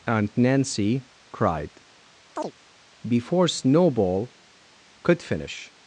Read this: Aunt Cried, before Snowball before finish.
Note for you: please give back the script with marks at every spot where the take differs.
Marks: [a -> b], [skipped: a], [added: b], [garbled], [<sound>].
Aunt [added: Nancy] Cried, [chirp] before Snowball [before -> could] finish.